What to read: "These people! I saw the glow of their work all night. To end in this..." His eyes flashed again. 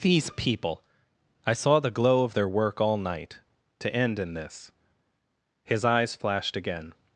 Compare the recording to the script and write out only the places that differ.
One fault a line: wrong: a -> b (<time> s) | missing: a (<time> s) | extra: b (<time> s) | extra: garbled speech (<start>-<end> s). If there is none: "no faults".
no faults